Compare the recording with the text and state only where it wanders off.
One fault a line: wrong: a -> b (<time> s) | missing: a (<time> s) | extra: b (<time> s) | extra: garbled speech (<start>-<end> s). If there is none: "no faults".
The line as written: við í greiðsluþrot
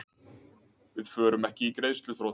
extra: förum ekki (1.1 s)